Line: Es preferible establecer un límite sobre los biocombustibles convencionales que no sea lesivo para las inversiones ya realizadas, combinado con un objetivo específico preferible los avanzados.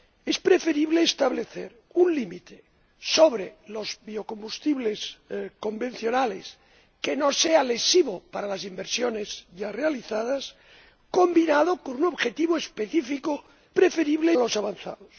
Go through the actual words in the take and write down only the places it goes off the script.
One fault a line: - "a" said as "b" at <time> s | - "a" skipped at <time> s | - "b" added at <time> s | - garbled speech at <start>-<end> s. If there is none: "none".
none